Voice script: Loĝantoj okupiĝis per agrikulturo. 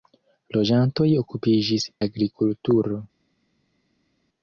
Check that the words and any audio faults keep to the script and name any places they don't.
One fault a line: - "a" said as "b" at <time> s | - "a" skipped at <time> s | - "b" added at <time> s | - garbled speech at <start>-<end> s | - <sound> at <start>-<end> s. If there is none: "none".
- "per" skipped at 1.9 s